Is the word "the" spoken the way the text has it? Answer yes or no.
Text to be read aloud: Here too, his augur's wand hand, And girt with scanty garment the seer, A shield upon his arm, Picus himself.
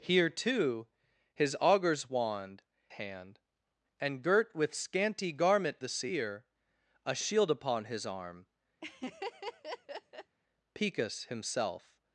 yes